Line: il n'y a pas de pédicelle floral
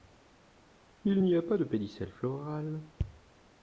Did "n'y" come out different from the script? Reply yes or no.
no